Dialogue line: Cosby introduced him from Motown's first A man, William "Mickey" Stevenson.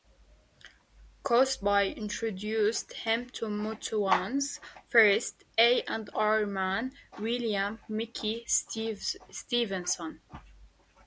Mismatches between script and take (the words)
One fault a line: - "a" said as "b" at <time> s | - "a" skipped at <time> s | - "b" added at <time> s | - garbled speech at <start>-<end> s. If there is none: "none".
- "from" said as "to" at 3.3 s
- "and R" added at 5.8 s